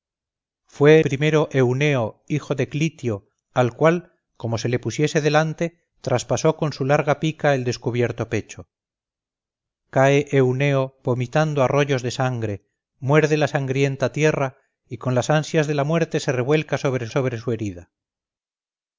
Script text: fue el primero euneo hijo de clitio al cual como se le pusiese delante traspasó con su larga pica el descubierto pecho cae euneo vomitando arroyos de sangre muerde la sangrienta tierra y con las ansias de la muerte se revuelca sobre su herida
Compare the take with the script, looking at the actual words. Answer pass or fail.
fail